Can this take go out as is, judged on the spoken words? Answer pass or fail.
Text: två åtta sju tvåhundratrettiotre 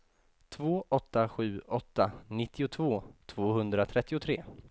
fail